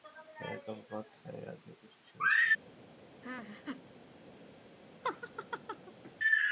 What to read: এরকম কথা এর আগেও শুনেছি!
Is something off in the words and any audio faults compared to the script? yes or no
yes